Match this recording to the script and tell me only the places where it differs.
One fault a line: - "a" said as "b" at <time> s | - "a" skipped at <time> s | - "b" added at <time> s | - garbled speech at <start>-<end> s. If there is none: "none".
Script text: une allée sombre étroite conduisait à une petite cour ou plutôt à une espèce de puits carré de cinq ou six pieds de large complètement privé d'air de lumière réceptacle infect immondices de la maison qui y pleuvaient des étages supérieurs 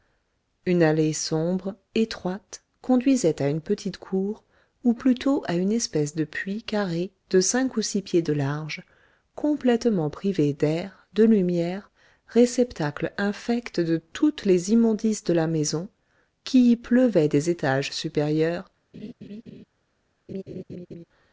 - "de toutes les" added at 13.8 s